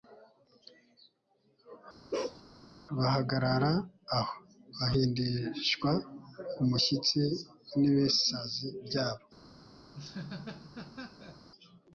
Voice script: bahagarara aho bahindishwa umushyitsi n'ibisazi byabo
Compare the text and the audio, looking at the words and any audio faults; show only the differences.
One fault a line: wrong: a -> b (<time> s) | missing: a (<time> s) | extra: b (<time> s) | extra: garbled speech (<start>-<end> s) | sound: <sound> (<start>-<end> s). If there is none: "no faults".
sound: bark (2.1-2.4 s)
sound: laugh (9.9-11.5 s)